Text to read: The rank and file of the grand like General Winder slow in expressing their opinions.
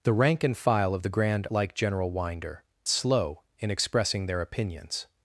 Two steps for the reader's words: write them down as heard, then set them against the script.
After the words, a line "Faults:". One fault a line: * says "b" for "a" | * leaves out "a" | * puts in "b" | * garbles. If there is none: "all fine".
The rank and file of the grand like General Winder slow in expressing their opinions.
Faults:
all fine